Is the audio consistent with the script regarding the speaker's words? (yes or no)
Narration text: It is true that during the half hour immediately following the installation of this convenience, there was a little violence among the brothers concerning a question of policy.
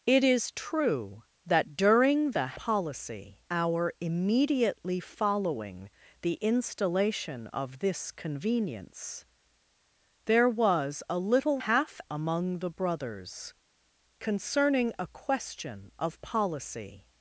no